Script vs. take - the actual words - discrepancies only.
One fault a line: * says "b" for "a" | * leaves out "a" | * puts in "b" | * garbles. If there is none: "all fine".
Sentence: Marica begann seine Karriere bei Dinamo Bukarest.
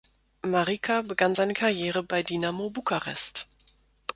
all fine